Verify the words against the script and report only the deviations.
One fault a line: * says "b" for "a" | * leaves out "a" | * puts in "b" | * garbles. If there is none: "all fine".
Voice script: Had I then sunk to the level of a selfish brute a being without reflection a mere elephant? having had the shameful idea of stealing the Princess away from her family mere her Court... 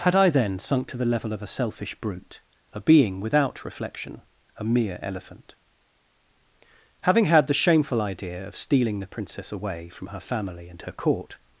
* says "and" for "mere"